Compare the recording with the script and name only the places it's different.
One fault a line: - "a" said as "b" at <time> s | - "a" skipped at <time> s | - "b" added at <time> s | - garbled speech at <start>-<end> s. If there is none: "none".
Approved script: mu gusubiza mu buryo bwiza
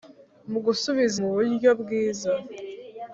none